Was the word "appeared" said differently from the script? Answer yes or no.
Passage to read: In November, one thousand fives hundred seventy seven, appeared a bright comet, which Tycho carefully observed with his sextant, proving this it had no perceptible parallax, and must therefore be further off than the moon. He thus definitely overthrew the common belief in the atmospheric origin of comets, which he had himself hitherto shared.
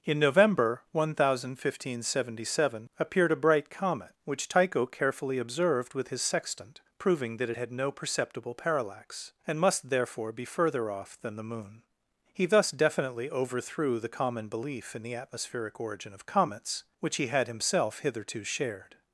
no